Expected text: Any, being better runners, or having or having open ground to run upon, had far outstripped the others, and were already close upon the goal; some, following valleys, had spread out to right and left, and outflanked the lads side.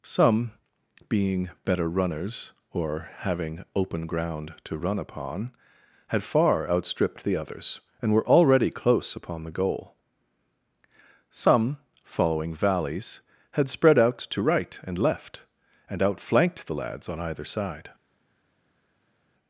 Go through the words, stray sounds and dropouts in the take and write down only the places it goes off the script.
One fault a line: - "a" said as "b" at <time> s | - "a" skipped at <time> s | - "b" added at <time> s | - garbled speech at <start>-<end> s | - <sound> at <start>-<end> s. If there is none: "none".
- "Any" said as "Some" at 0.0 s
- "or having" skipped at 3.6 s
- "on either" added at 17.1 s